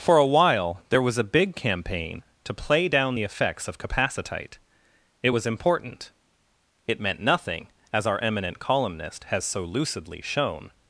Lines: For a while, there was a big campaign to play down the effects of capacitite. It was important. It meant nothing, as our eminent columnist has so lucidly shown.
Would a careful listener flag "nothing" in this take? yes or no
no